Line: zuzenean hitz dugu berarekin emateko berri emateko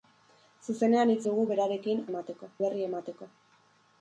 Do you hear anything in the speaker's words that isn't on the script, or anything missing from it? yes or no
no